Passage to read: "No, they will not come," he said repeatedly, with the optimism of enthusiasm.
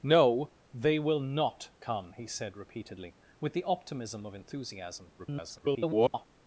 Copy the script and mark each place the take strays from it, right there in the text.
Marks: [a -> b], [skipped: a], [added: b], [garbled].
"No, they will not come," he said repeatedly, with the optimism of enthusiasm. [garbled]